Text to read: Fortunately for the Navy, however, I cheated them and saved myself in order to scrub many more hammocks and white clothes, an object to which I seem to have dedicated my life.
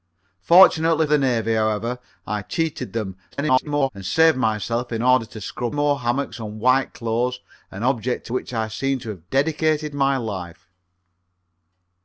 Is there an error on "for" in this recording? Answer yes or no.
yes